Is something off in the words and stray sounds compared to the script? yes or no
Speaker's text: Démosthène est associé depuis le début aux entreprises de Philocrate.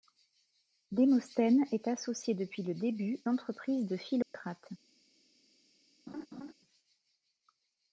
yes